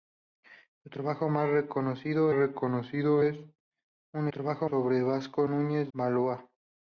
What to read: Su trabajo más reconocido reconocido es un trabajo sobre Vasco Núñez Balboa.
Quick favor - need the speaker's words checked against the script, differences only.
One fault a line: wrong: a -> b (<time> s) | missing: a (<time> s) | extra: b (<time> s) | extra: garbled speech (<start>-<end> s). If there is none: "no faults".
no faults